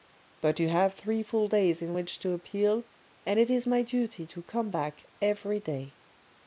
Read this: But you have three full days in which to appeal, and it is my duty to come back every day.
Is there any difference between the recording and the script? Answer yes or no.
no